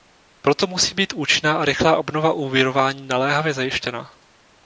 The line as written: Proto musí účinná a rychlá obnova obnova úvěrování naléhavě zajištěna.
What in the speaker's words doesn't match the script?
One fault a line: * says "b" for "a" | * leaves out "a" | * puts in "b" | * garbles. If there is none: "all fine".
* puts in "být"
* leaves out "obnova"